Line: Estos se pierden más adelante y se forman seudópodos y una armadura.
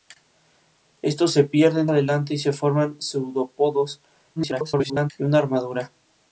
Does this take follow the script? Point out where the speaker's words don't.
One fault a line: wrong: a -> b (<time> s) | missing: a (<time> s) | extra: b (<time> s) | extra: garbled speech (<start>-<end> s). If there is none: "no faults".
missing: más (1.9 s)
extra: garbled speech (4.4-5.1 s)